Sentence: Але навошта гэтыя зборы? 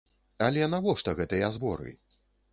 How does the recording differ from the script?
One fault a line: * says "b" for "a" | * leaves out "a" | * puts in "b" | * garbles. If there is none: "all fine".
all fine